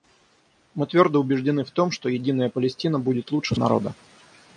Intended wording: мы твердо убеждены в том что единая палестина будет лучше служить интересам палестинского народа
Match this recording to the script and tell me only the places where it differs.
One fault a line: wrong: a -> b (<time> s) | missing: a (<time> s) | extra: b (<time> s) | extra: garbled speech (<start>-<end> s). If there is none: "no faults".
missing: служить интересам палестинского (3.5 s)